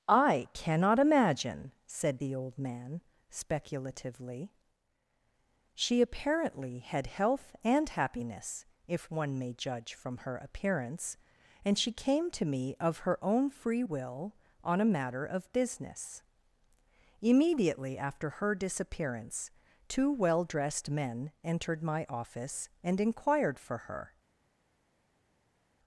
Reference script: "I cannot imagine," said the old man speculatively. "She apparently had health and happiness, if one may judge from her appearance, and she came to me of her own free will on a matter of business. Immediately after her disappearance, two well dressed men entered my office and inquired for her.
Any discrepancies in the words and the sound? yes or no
no